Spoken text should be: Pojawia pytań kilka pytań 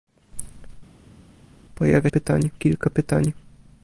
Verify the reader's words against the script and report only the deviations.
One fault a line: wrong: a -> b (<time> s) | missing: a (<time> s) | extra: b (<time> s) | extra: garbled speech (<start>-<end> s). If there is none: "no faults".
no faults